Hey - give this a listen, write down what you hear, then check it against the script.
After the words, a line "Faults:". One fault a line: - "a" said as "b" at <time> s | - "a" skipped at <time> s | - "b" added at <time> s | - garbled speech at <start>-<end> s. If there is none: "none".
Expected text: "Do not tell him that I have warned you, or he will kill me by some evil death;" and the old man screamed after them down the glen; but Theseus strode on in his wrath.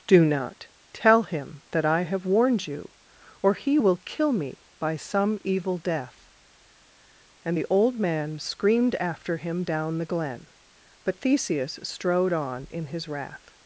"Do not tell him that I have warned you, or he will kill me by some evil death;" and the old man screamed after him down the glen; but Theseus strode on in his wrath.
Faults:
- "them" said as "him" at 9.4 s